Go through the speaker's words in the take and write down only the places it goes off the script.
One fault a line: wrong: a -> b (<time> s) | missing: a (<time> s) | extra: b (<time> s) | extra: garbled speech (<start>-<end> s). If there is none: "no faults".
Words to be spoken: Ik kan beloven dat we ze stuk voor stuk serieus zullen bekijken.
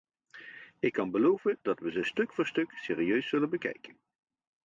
no faults